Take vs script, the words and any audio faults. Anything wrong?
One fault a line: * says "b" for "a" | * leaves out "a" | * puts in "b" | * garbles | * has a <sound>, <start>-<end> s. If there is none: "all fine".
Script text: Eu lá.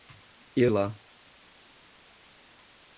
all fine